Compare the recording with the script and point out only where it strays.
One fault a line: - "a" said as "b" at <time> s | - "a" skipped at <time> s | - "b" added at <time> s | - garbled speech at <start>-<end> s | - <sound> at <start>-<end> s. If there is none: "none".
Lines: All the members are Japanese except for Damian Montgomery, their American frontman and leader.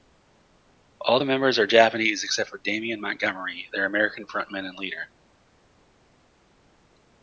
none